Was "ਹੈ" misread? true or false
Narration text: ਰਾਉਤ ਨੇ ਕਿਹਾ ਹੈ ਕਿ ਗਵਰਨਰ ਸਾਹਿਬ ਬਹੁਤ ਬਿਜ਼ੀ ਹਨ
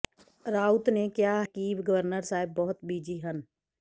true